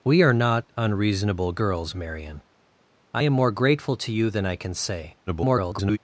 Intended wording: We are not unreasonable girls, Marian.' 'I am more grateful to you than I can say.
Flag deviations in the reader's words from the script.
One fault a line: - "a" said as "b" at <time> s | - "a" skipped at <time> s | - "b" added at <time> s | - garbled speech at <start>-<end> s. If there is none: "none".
- garbled speech at 5.3-6.0 s